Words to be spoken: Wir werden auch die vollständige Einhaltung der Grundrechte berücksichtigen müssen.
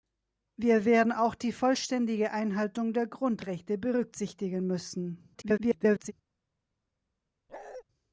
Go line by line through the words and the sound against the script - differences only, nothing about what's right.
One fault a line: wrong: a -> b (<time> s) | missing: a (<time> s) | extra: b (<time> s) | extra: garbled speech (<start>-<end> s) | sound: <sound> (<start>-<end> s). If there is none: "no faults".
extra: garbled speech (5.3-6.1 s)
sound: bark (7.5-7.8 s)